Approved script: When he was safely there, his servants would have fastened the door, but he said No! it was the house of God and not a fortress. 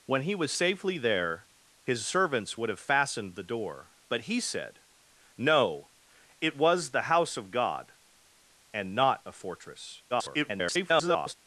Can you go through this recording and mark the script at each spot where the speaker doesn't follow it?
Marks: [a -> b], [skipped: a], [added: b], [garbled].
When he was safely there, his servants would have fastened the door, but he said No! it was the house of God and not a fortress. [garbled]